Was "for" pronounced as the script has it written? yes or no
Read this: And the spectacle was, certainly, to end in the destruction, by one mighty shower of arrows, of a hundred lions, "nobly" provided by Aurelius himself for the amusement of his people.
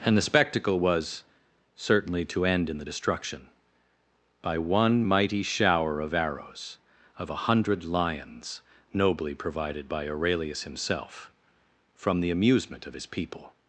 no